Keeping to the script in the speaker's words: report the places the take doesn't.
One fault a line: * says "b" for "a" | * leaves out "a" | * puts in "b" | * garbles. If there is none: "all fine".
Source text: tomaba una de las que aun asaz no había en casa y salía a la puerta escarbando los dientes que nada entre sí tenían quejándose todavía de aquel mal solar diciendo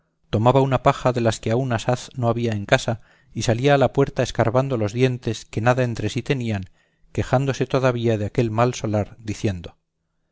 * puts in "paja"